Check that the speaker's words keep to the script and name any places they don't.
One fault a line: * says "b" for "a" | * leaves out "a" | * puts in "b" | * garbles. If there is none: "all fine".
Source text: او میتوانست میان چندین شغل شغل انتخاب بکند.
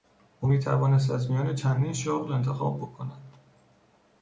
* puts in "از"
* leaves out "شغل"